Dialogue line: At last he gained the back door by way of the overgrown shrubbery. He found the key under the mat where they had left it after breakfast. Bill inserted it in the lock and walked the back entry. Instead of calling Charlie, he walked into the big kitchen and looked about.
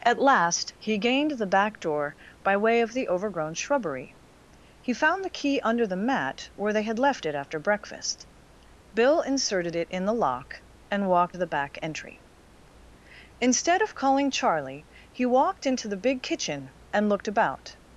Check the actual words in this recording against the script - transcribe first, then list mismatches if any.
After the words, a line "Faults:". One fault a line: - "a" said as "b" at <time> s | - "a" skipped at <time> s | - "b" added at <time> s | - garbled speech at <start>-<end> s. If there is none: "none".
At last he gained the back door by way of the overgrown shrubbery. He found the key under the mat where they had left it after breakfast. Bill inserted it in the lock and walked the back entry. Instead of calling Charlie, he walked into the big kitchen and looked about.
Faults:
none